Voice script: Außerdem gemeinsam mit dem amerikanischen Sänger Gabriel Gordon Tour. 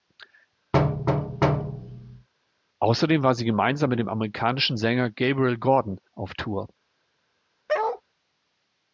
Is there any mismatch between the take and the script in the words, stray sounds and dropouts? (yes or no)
yes